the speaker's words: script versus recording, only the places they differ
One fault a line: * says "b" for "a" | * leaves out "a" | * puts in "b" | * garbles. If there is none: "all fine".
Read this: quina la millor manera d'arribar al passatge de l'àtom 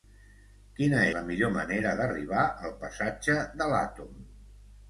all fine